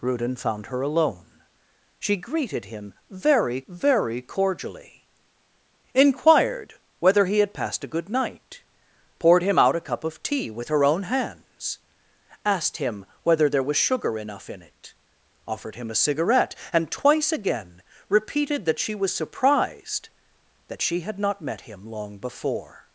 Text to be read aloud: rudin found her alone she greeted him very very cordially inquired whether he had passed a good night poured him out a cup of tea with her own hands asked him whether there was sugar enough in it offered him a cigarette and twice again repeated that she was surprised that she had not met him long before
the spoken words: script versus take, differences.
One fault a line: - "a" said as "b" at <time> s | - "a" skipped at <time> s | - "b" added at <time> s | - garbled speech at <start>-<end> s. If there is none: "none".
none